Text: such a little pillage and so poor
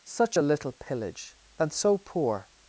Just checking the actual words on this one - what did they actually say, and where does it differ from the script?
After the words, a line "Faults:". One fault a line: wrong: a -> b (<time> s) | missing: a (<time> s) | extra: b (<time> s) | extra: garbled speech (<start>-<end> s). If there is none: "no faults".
such a little pillage and so poor
Faults:
no faults